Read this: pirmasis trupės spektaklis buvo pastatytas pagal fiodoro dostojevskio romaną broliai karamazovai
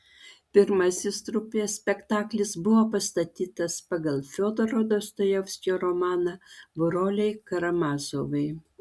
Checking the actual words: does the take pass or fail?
pass